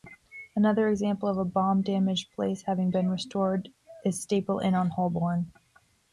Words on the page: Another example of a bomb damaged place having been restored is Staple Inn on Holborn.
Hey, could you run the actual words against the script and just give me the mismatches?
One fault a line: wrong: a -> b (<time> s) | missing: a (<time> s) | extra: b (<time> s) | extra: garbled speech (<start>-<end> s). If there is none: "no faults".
no faults